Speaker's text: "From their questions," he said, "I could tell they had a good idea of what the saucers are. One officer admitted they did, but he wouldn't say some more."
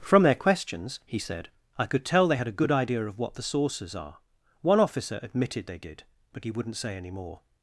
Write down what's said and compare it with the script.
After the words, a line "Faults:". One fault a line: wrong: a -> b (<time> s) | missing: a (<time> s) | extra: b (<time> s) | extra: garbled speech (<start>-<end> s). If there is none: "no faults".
"From their questions," he said, "I could tell they had a good idea of what the saucers are. One officer admitted they did, but he wouldn't say any more."
Faults:
wrong: some -> any (7.0 s)